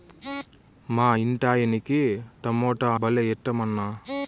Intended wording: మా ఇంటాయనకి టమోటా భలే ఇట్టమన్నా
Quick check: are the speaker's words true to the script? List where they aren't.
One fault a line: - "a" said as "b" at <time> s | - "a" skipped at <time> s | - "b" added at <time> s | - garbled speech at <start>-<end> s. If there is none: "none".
none